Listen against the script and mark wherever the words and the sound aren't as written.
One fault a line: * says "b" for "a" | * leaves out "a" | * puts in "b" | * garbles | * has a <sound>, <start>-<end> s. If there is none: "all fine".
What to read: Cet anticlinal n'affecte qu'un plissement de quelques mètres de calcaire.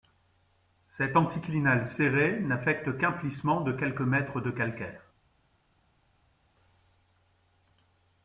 * puts in "serré"